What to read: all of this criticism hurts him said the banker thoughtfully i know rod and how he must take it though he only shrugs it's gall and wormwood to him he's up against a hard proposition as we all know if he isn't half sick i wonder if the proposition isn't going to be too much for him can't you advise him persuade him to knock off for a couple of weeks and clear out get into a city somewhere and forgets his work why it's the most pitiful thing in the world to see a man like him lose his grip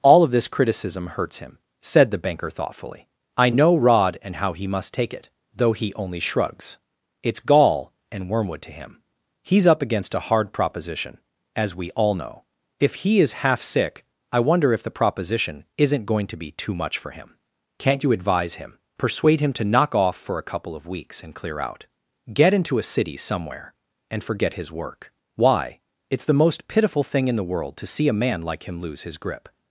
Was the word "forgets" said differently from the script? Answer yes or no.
yes